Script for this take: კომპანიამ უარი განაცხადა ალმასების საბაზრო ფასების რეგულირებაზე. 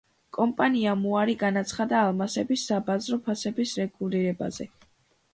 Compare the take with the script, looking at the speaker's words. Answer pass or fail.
pass